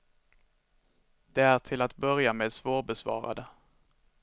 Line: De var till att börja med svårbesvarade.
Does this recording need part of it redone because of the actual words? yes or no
yes